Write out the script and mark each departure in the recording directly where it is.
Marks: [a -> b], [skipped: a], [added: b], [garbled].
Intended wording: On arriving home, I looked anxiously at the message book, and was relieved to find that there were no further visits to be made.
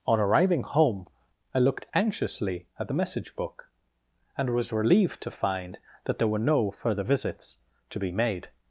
On arriving home, I looked anxiously at the message book, and was relieved to find that there were no further visits to be made.